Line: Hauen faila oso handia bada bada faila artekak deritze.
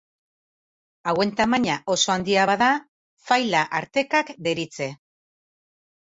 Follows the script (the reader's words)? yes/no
no